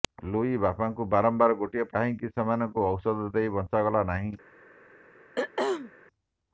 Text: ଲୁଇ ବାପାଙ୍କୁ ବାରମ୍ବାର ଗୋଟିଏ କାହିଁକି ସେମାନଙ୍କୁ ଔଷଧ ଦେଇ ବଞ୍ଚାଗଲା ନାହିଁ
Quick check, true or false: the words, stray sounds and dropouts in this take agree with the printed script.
false